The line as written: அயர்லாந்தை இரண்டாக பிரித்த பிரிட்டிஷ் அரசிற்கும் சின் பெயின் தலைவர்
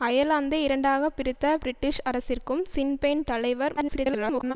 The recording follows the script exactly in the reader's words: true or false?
false